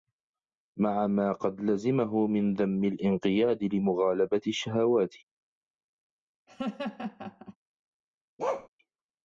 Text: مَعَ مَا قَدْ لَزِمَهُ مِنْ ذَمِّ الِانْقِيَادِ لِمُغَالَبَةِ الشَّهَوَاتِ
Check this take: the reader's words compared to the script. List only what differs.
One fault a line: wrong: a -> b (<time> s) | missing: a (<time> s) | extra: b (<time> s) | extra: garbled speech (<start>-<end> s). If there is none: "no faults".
no faults